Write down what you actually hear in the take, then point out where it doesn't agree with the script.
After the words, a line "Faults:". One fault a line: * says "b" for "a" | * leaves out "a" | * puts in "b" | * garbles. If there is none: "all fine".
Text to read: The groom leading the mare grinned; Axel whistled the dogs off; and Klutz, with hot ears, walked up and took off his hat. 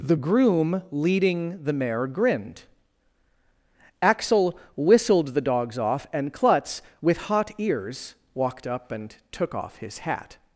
The groom leading the mare grinned; Axel whistled the dogs off; and Klutz, with hot ears, walked up and took off his hat.
Faults:
all fine